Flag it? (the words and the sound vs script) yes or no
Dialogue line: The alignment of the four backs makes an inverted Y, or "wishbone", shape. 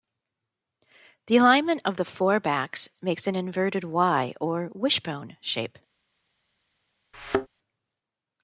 yes